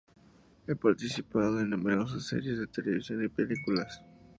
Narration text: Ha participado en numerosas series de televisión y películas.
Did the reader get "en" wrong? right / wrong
right